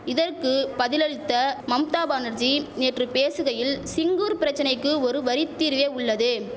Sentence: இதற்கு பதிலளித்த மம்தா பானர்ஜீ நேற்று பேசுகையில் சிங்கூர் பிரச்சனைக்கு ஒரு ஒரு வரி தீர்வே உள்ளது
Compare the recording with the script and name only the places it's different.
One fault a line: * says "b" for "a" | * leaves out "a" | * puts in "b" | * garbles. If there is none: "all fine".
* leaves out "ஒரு"